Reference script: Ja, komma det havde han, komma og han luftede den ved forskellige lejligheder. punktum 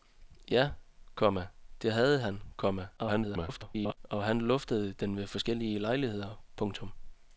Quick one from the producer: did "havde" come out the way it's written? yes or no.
yes